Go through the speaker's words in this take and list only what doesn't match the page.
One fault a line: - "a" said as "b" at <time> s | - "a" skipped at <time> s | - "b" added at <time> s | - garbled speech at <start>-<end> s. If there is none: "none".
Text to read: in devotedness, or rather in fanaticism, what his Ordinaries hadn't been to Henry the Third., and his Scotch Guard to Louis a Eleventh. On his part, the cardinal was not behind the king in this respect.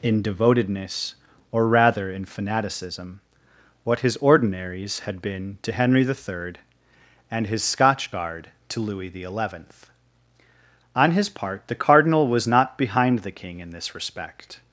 - "hadn't" said as "had" at 5.0 s
- "a" said as "the" at 9.1 s